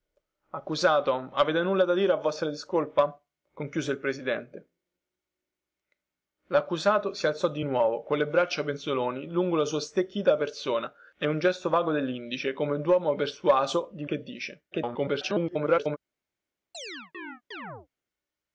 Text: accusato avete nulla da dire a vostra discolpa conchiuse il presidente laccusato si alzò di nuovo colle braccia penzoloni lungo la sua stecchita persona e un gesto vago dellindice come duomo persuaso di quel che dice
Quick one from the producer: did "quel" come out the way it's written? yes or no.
no